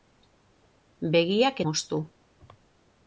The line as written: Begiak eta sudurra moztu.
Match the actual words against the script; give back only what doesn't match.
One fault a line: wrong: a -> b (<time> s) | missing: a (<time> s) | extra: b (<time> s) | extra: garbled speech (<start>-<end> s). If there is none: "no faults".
missing: eta sudurra (1.6 s)